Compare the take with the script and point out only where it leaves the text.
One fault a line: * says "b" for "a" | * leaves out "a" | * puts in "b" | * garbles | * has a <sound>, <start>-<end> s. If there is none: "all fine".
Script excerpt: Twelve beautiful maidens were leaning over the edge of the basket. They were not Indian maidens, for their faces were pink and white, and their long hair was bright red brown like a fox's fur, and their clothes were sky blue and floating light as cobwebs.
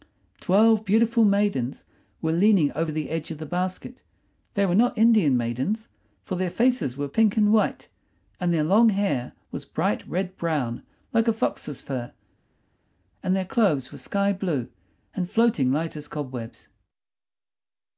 all fine